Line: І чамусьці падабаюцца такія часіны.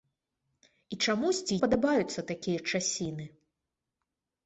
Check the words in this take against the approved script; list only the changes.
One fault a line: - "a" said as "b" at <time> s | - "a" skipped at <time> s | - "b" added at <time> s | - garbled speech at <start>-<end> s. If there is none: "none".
none